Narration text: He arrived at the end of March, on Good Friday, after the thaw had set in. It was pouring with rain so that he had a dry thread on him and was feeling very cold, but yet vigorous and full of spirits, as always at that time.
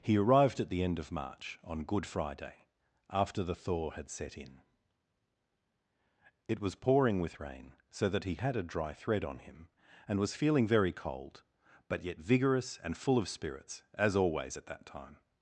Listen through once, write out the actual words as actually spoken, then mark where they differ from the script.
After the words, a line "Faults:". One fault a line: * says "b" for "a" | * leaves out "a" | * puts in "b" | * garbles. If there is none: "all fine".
He arrived at the end of March, on Good Friday, after the thaw had set in. It was pouring with rain so that he had a dry thread on him and was feeling very cold, but yet vigorous and full of spirits, as always at that time.
Faults:
all fine